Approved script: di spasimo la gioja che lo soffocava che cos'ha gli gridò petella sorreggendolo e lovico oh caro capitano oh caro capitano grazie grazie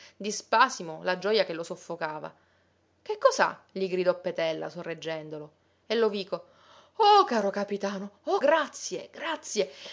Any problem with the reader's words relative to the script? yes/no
yes